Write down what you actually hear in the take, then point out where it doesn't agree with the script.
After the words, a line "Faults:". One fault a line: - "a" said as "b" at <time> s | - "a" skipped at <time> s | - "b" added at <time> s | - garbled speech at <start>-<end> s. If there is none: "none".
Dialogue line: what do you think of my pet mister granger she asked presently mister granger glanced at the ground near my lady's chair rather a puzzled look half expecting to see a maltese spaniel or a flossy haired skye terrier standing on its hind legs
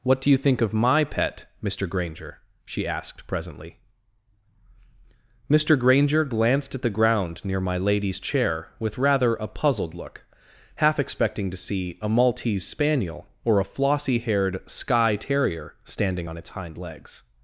what do you think of my pet mister granger she asked presently mister granger glanced at the ground near my lady's chair with rather a puzzled look half expecting to see a maltese spaniel or a flossy haired skye terrier standing on its hind legs
Faults:
- "with" added at 8.8 s